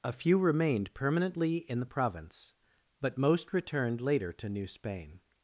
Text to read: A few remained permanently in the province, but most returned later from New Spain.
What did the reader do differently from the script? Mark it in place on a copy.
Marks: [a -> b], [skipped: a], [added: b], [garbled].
A few remained permanently in the province, but most returned later [from -> to] New Spain.